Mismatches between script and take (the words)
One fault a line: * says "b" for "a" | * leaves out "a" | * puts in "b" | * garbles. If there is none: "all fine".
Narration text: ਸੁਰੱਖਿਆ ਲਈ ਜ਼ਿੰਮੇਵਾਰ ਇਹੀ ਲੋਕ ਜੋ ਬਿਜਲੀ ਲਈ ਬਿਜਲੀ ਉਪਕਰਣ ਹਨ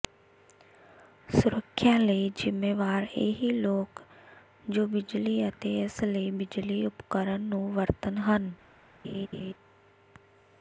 * puts in "ਅਤੇ ਇਸ"
* puts in "ਨੂੰ ਵਰਤਣ"